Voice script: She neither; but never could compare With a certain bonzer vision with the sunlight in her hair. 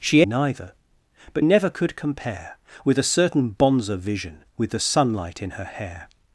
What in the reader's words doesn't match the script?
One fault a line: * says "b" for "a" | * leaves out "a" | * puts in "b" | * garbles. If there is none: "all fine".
all fine